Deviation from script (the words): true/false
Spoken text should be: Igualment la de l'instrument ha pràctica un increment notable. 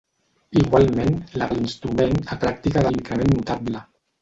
false